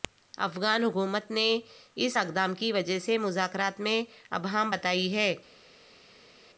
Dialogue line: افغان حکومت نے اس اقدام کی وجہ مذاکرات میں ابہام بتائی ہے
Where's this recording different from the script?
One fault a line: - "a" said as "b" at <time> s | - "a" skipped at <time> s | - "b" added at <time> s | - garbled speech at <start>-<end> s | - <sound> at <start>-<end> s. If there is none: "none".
none